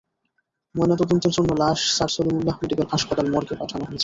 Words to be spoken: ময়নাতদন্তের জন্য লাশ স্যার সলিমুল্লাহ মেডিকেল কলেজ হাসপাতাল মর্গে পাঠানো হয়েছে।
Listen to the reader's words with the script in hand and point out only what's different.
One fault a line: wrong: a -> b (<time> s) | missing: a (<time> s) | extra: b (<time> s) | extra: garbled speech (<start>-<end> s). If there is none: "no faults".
missing: কলেজ (2.9 s)